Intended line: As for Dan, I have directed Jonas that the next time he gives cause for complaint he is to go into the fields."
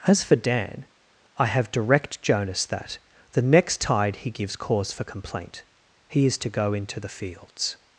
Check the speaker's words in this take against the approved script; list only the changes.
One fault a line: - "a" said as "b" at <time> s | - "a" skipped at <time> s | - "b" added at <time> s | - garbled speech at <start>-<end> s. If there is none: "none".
- "directed" said as "direct" at 1.7 s
- "time" said as "tide" at 3.8 s